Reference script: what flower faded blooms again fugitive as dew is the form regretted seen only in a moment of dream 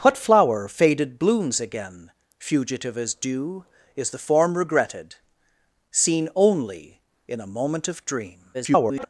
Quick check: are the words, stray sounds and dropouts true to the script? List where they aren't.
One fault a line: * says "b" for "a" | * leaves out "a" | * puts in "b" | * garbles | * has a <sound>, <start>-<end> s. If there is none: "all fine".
* garbles